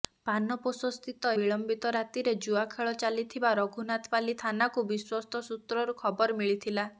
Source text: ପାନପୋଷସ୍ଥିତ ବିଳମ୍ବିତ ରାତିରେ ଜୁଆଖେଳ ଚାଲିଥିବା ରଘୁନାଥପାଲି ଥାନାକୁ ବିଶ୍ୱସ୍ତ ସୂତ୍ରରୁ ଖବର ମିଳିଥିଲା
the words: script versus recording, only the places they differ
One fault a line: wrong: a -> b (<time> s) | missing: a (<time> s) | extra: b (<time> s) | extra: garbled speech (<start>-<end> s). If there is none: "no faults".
no faults